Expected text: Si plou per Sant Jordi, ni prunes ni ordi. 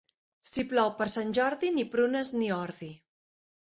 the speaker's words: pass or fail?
pass